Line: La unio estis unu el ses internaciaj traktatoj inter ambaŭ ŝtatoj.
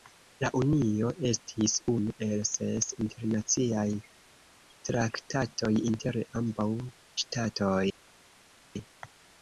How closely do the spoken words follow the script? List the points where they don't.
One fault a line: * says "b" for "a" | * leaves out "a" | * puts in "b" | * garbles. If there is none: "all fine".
all fine